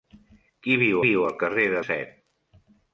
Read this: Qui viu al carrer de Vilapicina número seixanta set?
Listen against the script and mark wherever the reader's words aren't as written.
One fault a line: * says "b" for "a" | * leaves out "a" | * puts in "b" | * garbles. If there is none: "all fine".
* puts in "viu"
* leaves out "Vilapicina número seixanta"